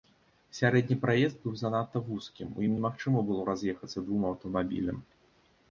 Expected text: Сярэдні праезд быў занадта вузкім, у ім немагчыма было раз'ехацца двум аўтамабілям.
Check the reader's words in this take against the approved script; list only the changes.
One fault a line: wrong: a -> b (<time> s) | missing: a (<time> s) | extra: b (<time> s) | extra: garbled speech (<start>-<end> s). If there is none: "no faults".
no faults